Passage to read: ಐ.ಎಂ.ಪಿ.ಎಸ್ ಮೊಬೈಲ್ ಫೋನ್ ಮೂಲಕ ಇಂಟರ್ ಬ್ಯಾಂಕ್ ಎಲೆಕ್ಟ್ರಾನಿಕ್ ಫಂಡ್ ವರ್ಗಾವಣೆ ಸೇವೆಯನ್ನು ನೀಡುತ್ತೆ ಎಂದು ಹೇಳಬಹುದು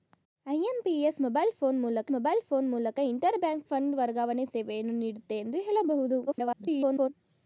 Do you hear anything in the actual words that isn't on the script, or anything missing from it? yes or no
yes